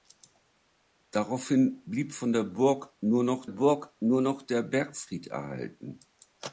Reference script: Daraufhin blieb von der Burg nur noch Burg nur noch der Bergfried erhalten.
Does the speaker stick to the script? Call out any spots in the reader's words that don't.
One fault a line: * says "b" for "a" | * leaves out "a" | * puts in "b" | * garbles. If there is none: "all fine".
all fine